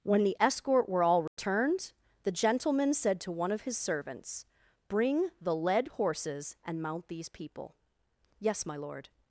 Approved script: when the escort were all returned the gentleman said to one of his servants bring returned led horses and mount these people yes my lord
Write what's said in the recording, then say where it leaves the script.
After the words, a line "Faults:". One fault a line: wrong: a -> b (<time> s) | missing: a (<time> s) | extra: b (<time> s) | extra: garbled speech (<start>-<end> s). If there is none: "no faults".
when the escort were all returned the gentleman said to one of his servants bring the led horses and mount these people yes my lord
Faults:
wrong: returned -> the (5.4 s)